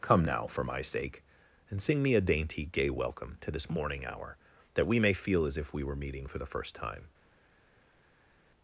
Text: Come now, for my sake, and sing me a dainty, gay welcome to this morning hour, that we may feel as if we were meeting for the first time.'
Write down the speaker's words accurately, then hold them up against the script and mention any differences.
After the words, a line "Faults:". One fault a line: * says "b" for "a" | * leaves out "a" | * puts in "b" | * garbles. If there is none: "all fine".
Come now, for my sake, and sing me a dainty, gay welcome to this morning hour, that we may feel as if we were meeting for the first time.'
Faults:
all fine